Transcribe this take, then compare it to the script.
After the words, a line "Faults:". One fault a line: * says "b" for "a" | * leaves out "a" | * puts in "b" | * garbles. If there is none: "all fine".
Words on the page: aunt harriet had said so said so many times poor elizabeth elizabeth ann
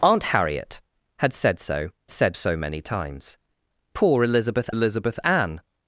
aunt harriet had said so said so many times poor elizabeth elizabeth ann
Faults:
all fine